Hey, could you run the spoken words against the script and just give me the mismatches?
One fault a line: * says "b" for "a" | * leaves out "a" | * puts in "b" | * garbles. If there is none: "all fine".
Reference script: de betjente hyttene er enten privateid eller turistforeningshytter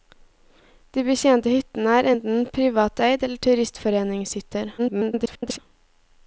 * garbles